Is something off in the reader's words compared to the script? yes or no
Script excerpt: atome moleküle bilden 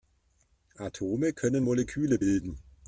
yes